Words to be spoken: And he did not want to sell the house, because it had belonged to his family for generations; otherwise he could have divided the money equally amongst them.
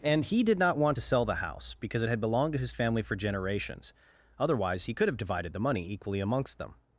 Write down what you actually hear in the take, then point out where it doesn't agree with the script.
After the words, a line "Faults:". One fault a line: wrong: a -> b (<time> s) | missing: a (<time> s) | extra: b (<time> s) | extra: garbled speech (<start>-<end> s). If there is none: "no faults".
And he did not want to sell the house, because it had belonged to his family for generations; otherwise he could have divided the money equally amongst them.
Faults:
no faults